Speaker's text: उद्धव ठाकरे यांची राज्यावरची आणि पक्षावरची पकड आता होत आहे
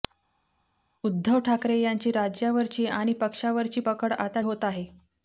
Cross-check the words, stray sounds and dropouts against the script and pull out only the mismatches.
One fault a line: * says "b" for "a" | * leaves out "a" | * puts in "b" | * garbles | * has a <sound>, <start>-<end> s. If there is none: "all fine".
all fine